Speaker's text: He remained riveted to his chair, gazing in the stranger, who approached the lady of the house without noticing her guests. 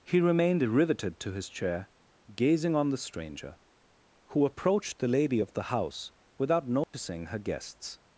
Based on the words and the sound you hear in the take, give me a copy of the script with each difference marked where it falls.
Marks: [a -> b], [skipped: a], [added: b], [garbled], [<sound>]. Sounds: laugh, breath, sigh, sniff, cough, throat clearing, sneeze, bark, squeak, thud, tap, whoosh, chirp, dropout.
He remained riveted to his chair, gazing [in -> on] the stranger, who approached the lady of the house without noticing [dropout] her guests.